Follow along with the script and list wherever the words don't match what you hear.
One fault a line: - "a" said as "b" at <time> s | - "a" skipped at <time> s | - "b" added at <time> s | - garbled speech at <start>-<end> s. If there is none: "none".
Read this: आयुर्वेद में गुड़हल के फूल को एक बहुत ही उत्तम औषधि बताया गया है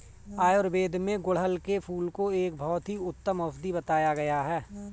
none